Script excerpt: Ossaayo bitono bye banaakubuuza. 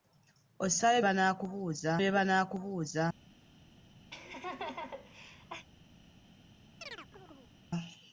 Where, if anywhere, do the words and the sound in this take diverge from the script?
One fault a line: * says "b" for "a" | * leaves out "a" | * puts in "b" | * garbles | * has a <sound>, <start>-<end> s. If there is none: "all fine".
* says "banaakubuuza" for "bitono"
* has a laugh, 4.1-5.7 s
* has a chirp, 6.8-7.5 s